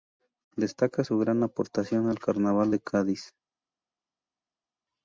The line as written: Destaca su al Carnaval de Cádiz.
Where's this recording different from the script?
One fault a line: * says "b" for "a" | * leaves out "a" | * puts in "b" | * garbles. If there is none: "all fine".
* puts in "gran aportación"